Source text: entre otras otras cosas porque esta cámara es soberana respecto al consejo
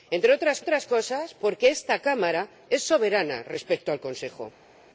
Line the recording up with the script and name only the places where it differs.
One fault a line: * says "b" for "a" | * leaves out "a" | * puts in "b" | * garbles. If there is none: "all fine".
all fine